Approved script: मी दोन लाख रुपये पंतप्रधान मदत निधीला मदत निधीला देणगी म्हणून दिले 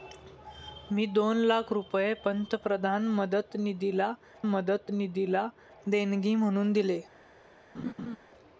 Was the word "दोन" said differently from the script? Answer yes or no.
no